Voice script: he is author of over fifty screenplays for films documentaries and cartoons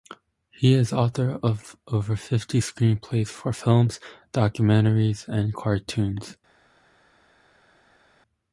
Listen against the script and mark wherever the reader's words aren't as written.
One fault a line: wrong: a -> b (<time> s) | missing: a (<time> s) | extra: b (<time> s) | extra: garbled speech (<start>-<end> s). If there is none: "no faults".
no faults